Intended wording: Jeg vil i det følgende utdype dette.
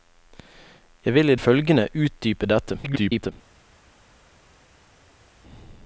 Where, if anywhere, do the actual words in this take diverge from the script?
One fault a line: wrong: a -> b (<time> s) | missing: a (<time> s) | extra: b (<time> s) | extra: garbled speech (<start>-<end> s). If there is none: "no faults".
missing: det (1.4 s)
extra: garbled speech (2.8-3.3 s)